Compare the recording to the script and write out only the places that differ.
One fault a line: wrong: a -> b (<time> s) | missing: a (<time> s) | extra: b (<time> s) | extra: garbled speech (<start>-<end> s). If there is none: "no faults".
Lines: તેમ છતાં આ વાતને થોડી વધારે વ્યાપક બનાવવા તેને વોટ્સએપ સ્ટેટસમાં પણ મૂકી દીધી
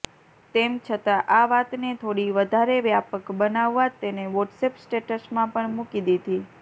no faults